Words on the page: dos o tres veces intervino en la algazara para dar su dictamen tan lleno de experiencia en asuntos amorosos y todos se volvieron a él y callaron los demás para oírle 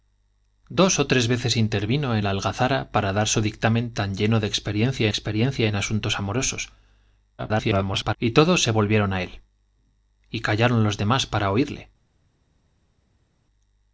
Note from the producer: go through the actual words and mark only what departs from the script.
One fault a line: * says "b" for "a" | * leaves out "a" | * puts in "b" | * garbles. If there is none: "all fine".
* puts in "experiencia"
* garbles